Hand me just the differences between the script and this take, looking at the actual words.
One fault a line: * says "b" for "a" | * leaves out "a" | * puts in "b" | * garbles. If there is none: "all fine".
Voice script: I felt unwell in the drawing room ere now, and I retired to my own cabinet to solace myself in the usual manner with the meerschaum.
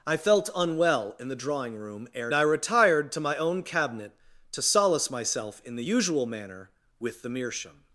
* leaves out "now and"